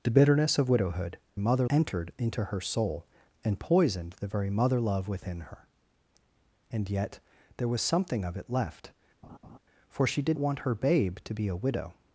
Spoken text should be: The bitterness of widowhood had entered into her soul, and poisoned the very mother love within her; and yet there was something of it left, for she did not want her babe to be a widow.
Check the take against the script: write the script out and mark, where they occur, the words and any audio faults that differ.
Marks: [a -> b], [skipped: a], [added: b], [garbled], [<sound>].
The bitterness of widowhood [had -> mother] entered into her soul, and poisoned the very mother love within her; and yet there was something of it left, [laugh] for she did [skipped: not] want her babe to be a widow.